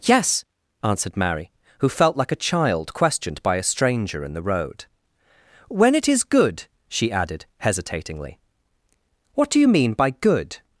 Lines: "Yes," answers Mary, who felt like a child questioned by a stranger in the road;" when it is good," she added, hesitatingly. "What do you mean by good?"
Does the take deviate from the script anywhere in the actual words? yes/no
yes